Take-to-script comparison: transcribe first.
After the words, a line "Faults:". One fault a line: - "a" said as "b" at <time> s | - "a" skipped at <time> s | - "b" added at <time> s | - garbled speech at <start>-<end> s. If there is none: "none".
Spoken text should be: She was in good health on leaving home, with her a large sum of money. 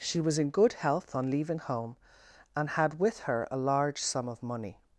She was in good health on leaving home, and had with her a large sum of money.
Faults:
- "and had" added at 2.5 s